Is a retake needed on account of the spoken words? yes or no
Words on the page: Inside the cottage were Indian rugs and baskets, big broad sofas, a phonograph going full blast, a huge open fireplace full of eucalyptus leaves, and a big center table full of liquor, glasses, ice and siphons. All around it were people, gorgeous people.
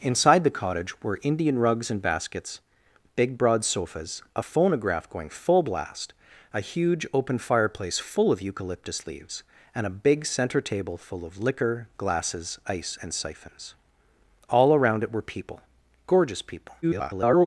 yes